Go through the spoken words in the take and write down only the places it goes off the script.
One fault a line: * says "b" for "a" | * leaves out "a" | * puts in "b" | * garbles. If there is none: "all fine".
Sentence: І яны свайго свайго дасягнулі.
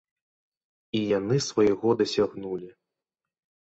* leaves out "свайго"